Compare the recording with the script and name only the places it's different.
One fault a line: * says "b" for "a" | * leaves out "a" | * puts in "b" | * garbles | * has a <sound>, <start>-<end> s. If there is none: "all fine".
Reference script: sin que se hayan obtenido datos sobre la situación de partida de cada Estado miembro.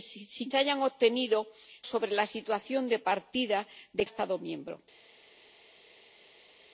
* leaves out "que"
* leaves out "datos"
* leaves out "cada"